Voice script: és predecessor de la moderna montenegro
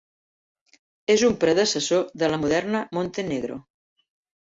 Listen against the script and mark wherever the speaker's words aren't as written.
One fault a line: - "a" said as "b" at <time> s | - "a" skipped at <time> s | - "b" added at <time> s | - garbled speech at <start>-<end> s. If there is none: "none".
- "un" added at 1.3 s